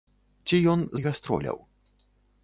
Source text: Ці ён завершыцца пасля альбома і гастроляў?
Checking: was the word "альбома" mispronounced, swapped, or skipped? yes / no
yes